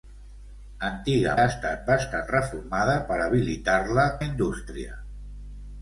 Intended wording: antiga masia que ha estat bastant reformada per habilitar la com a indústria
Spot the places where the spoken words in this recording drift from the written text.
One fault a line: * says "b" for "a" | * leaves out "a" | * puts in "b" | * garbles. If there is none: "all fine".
* leaves out "masia que"
* leaves out "com"